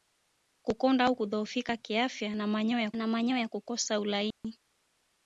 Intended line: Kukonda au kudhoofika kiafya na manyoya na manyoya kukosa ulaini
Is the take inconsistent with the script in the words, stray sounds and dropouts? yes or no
yes